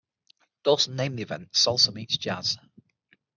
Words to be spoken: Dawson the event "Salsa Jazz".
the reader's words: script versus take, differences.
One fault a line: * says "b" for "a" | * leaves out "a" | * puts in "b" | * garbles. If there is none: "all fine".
* puts in "named"
* puts in "Meets"